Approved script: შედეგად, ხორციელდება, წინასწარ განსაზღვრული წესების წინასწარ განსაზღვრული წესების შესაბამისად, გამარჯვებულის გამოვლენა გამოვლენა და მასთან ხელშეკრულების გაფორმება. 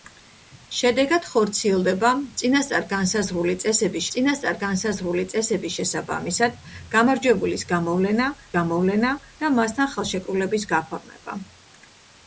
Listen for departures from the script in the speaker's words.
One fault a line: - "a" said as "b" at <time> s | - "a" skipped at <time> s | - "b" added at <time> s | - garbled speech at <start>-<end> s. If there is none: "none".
none